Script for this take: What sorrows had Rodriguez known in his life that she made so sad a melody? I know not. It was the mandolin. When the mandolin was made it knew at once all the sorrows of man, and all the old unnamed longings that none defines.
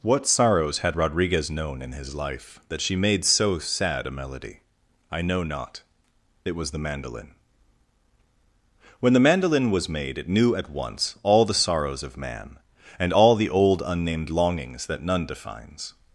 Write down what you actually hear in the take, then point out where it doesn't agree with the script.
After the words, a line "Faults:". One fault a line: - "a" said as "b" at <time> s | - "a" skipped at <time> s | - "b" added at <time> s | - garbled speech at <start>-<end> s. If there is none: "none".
What sorrows had Rodriguez known in his life that she made so sad a melody? I know not. It was the mandolin. When the mandolin was made it knew at once all the sorrows of man, and all the old unnamed longings that none defines.
Faults:
none